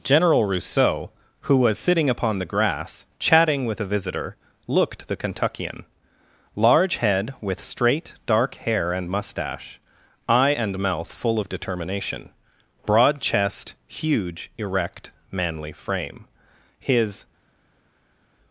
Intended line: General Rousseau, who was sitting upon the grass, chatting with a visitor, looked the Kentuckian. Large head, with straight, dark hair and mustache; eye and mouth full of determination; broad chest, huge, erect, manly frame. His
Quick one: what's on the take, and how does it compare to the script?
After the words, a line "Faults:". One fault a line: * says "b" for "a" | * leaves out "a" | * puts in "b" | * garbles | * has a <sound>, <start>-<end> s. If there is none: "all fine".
General Rousseau, who was sitting upon the grass, chatting with a visitor, looked the Kentuckian. Large head, with straight, dark hair and mustache; eye and mouth full of determination; broad chest, huge, erect, manly frame. His
Faults:
all fine